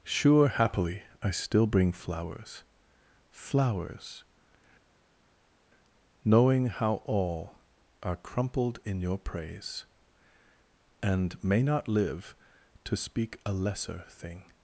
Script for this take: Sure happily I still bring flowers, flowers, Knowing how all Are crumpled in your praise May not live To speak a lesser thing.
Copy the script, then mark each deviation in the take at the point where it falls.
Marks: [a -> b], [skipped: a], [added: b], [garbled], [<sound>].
Sure happily I still bring flowers, flowers, Knowing how all Are crumpled in your praise [added: And] May not live To speak a lesser thing.